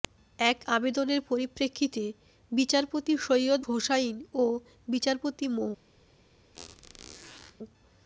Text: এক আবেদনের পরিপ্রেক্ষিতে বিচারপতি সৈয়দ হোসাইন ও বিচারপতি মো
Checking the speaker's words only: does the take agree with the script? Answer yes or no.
yes